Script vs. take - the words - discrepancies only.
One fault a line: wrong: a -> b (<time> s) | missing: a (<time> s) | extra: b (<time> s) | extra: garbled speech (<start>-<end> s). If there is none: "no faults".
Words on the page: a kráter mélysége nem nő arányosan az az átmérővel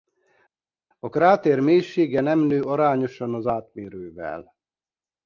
missing: az (3.5 s)